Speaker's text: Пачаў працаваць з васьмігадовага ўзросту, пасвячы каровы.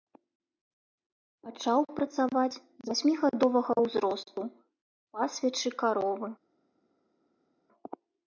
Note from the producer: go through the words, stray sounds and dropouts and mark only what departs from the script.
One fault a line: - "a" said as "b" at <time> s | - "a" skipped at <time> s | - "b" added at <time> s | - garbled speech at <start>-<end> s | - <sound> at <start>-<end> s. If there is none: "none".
none